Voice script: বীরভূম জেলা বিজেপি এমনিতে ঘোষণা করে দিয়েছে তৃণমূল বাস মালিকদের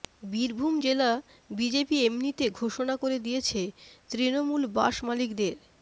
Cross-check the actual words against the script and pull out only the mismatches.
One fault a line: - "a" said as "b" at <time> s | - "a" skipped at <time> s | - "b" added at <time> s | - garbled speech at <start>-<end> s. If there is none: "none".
none